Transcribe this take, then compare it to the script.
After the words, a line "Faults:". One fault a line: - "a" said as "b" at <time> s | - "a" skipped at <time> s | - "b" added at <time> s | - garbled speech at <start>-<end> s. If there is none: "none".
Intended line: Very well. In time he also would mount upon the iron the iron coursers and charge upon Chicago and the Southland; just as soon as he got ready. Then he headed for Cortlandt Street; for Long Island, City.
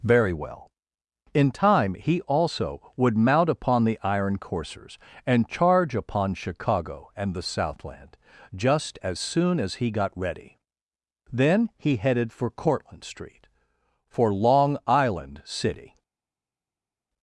Very well. In time he also would mount upon the iron coursers and charge upon Chicago and the Southland; just as soon as he got ready. Then he headed for Cortlandt Street; for Long Island, City.
Faults:
- "the iron" skipped at 4.4 s